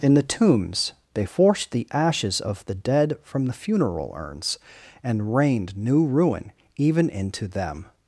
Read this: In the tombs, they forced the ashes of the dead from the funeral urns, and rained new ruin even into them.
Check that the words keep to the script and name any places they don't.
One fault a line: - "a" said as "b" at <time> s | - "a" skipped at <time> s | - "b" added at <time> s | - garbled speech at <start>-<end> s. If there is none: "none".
none